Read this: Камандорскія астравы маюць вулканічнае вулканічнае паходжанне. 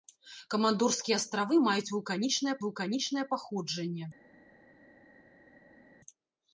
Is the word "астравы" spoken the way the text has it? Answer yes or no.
yes